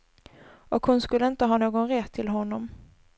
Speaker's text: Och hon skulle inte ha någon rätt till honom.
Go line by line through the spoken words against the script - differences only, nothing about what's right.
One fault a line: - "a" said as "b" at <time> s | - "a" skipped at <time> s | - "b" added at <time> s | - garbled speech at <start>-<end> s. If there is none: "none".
none